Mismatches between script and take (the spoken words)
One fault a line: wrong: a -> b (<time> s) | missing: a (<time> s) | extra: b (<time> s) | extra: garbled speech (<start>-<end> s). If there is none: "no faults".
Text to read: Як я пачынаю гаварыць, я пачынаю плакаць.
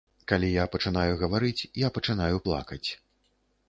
wrong: Як -> Калі (0.3 s)